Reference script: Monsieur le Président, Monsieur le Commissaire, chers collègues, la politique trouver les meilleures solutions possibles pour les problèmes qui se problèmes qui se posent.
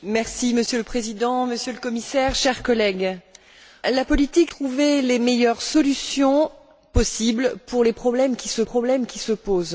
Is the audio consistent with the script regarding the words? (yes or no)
yes